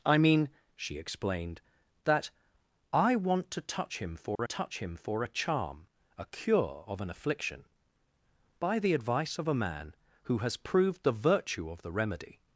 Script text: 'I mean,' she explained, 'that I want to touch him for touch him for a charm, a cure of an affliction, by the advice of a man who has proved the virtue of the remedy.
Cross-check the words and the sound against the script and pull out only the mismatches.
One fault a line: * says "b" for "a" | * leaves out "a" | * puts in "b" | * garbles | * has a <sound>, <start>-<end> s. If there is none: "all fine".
* has a dropout, 4.4-4.4 s